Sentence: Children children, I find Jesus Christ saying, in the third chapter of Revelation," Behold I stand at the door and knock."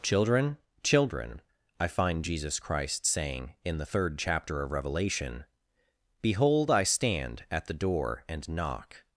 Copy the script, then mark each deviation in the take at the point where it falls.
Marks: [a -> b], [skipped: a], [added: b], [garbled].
Children children, I find Jesus Christ saying, in the third chapter of Revelation," Behold I stand at the door and knock."